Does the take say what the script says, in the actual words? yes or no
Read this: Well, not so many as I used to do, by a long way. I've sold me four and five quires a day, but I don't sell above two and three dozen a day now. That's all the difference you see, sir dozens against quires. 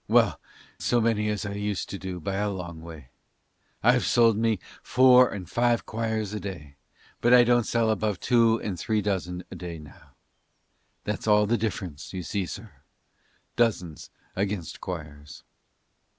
no